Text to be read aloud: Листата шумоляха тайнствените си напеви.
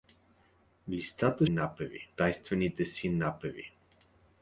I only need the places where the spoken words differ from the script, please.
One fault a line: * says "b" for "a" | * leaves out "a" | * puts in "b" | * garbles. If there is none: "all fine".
* says "напеви" for "шумоляха"